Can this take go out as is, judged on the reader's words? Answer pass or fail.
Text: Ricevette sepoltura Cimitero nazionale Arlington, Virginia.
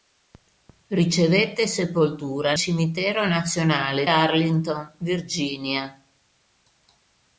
pass